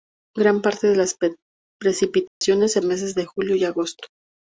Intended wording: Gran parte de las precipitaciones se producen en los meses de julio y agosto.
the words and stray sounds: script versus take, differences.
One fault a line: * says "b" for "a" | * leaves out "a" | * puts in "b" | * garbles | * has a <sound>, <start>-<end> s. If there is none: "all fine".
* has a dropout, 2.3-2.4 s
* leaves out "producen en los"